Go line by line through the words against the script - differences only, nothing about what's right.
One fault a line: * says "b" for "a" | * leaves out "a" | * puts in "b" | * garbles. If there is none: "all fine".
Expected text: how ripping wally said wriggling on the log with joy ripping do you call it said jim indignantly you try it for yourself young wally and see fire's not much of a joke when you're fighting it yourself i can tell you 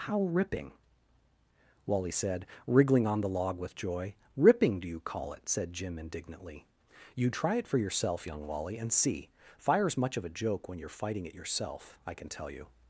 * leaves out "not"